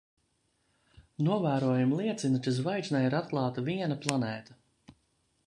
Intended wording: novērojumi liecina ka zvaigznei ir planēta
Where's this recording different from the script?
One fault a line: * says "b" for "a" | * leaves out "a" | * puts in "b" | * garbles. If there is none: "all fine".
* puts in "atklāta viena"